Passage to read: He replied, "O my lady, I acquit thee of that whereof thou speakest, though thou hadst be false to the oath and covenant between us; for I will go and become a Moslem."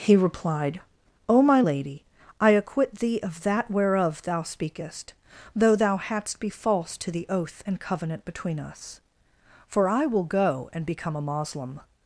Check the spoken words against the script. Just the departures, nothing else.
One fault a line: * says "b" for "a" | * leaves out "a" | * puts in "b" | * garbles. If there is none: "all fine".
all fine